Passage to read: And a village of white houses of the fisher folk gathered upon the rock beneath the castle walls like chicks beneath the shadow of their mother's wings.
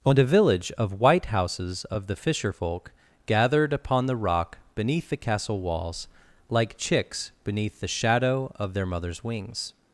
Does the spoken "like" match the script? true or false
true